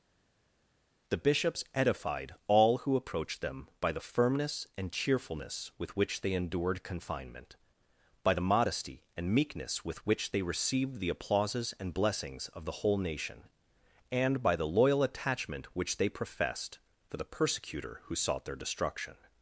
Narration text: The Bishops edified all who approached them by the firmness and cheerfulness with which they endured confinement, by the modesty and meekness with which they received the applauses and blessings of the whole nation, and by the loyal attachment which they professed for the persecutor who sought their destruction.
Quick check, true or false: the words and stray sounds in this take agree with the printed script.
true